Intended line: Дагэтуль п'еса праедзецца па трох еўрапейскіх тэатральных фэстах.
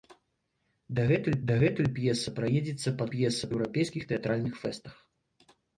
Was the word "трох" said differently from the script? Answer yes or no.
yes